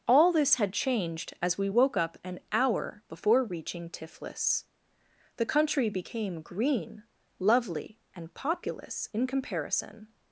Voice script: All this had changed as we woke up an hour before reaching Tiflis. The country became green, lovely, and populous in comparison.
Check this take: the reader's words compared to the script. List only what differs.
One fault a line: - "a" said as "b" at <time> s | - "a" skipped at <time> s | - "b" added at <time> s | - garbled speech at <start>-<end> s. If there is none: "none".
none